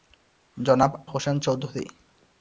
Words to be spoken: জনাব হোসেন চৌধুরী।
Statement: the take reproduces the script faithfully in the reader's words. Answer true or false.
true